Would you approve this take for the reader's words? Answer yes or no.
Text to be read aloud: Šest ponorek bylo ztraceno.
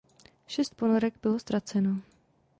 yes